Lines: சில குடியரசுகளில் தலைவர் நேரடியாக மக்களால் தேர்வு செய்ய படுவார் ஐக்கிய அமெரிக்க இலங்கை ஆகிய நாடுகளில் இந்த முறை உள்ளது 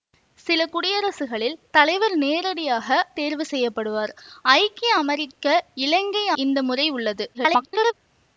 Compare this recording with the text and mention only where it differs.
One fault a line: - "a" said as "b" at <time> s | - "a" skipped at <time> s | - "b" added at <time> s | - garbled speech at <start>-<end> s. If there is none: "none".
- "மக்களால்" skipped at 2.9 s
- "ஆகிய நாடுகளில்" skipped at 6.3 s
- garbled speech at 7.3-7.9 s